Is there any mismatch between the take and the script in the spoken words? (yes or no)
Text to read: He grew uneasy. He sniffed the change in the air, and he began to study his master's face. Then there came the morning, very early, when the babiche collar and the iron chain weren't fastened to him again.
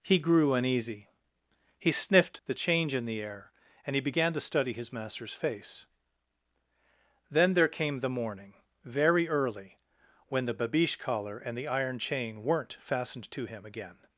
no